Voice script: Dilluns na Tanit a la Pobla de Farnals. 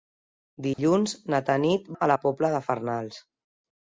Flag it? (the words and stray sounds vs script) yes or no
yes